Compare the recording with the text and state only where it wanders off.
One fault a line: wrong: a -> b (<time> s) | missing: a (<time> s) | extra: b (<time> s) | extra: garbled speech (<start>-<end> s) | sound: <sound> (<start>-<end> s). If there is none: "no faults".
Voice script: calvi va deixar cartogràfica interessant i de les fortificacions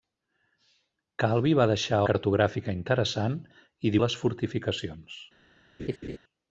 sound: laugh (5.8-6.2 s)